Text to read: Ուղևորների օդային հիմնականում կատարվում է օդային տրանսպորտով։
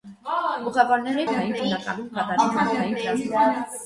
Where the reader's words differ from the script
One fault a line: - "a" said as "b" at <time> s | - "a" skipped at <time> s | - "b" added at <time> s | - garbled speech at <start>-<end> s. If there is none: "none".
none